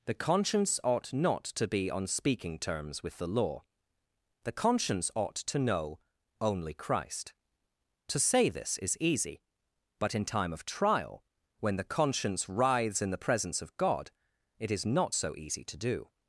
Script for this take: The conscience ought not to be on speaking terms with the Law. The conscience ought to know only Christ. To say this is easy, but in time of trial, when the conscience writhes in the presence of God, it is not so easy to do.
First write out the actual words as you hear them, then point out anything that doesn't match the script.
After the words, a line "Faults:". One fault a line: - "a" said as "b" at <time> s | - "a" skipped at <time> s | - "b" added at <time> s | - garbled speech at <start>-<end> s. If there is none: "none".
The conscience ought not to be on speaking terms with the Law. The conscience ought to know only Christ. To say this is easy, but in time of trial, when the conscience writhes in the presence of God, it is not so easy to do.
Faults:
none